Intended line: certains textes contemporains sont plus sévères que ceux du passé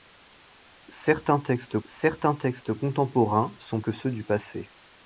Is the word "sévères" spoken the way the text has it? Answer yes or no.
no